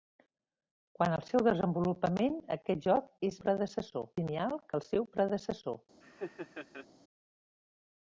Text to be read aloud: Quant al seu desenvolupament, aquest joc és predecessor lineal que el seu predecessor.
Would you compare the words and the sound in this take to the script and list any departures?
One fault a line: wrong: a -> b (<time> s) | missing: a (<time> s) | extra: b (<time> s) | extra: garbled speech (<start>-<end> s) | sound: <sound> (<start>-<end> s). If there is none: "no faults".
sound: laugh (6.0-6.9 s)